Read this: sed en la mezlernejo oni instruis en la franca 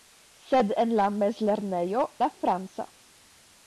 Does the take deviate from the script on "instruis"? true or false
true